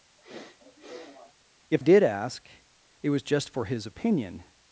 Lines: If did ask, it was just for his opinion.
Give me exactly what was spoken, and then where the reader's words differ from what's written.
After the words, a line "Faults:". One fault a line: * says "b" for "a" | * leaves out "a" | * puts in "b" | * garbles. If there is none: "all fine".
If did ask, it was just for his opinion.
Faults:
all fine